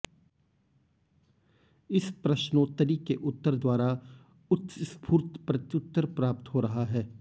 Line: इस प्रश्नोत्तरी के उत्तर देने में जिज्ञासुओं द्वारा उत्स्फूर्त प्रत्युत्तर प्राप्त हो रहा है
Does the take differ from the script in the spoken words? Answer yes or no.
yes